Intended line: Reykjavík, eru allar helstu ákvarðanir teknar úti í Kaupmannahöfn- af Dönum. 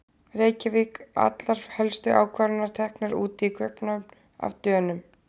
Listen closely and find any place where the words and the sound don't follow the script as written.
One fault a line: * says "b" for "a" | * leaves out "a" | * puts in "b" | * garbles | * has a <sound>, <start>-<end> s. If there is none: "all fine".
* leaves out "eru"